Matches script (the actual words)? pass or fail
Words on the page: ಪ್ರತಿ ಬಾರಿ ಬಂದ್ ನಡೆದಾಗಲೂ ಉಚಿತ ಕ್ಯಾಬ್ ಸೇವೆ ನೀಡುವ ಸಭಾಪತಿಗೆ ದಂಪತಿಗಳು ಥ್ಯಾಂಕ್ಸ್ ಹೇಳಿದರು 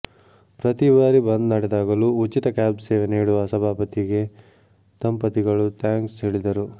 pass